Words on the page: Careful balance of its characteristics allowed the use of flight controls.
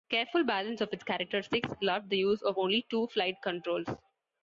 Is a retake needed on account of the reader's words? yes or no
yes